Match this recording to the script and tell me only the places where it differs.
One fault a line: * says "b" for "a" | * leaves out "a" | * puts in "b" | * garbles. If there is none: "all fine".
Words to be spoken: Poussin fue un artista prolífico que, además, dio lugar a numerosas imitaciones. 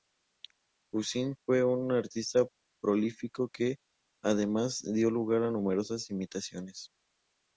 all fine